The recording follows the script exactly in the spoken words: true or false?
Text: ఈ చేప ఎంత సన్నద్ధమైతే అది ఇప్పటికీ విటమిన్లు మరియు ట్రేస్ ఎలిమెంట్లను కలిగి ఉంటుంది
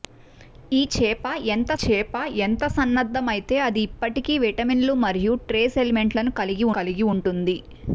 false